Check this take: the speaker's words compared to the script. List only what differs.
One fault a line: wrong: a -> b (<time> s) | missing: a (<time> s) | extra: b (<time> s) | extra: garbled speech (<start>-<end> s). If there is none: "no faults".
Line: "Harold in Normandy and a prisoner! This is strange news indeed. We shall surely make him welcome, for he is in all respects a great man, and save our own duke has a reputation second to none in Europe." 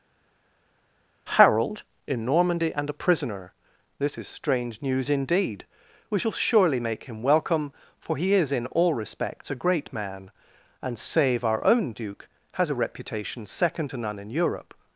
no faults